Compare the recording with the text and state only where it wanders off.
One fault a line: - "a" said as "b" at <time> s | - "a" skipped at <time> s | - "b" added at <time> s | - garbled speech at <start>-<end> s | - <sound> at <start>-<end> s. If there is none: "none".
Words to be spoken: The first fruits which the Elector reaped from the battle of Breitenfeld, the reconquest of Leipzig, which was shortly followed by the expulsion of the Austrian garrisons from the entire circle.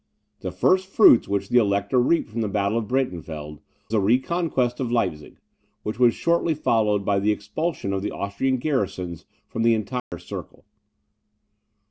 - dropout at 10.0-10.1 s